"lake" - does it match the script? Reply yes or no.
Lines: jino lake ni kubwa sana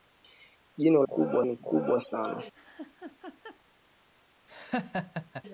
no